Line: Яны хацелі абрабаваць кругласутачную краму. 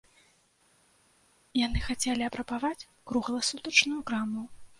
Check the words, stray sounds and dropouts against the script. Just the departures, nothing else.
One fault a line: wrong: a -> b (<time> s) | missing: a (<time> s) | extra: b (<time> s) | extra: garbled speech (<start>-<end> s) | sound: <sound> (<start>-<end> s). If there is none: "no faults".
no faults